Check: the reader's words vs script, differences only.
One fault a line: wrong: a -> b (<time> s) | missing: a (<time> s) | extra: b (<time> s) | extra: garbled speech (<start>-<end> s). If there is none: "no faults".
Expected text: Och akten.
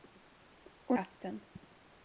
no faults